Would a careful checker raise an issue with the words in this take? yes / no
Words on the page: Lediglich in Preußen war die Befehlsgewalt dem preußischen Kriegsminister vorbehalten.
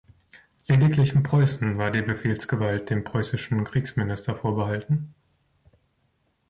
no